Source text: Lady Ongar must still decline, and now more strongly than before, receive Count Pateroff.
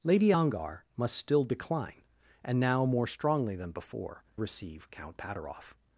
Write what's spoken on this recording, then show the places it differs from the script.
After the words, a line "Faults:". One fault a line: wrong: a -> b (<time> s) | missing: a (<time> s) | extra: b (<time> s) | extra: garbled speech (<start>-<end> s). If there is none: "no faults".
Lady Ongar must still decline, and now more strongly than before, receive Count Pateroff.
Faults:
no faults